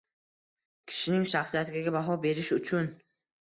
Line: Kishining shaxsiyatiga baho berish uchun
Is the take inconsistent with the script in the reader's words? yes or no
no